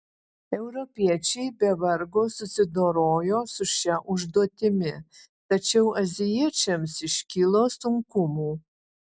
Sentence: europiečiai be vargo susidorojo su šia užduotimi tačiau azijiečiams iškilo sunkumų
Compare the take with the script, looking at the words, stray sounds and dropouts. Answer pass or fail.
pass